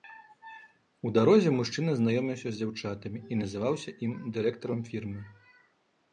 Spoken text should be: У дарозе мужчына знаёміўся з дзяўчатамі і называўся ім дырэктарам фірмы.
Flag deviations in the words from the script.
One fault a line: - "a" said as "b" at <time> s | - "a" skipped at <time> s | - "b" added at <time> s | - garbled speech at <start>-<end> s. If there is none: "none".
none